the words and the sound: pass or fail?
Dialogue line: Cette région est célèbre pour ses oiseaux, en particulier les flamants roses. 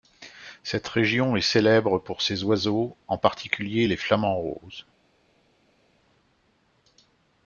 pass